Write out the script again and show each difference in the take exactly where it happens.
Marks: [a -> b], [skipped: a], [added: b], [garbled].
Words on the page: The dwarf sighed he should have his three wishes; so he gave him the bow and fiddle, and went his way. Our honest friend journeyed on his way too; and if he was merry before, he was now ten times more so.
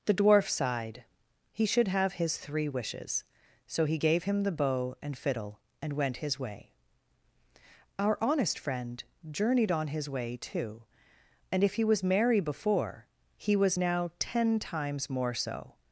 The dwarf sighed he should have his three wishes; so he gave him the bow and fiddle, and went his way. Our honest friend journeyed on his way too; and if he was merry before, he was now ten times more so.